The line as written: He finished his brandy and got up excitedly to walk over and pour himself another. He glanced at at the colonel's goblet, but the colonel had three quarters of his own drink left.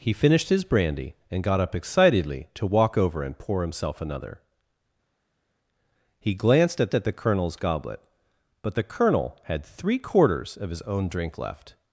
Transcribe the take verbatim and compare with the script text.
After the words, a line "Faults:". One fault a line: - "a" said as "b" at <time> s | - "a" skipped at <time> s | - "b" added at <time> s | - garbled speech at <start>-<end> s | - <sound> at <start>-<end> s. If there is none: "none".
He finished his brandy and got up excitedly to walk over and pour himself another. He glanced at at the colonel's goblet, but the colonel had three quarters of his own drink left.
Faults:
none